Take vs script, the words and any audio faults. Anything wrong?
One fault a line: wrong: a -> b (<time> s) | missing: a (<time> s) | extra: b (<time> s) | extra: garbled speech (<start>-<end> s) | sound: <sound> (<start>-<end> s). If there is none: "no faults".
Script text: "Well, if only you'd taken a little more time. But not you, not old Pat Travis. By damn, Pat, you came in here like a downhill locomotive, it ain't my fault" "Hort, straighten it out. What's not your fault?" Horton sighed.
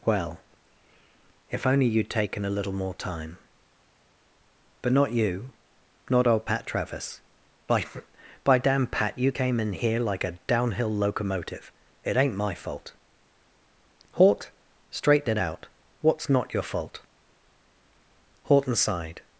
extra: By (8.4 s)